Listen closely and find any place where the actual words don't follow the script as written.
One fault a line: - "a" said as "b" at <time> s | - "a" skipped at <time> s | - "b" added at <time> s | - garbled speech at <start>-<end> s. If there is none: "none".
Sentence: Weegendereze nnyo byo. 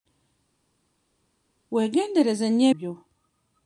none